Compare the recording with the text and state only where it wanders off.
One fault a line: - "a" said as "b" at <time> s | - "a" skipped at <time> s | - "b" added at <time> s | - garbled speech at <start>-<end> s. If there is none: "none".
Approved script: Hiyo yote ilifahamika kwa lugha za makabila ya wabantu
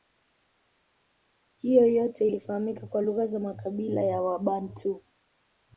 none